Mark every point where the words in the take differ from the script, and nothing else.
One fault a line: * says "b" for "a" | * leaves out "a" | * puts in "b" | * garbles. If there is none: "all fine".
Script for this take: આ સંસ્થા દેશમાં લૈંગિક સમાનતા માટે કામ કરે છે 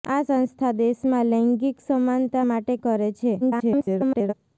* leaves out "કામ"
* garbles